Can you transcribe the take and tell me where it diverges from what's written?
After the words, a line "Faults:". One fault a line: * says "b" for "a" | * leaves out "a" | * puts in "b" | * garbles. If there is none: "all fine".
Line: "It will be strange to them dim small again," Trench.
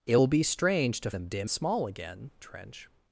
"It will be strange to them dim small again," Trench.
Faults:
all fine